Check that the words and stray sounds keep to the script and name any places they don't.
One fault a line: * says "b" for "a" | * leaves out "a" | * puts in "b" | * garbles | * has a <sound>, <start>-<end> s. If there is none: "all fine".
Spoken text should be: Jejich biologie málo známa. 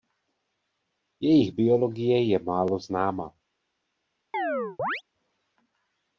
* puts in "je"
* has a chirp, 4.3-5.0 s